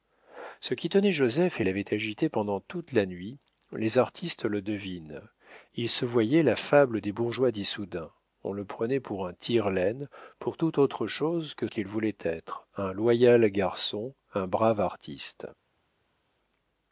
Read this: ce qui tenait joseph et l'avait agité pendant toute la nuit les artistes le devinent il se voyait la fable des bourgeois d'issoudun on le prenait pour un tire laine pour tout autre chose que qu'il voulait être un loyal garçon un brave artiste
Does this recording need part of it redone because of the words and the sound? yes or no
no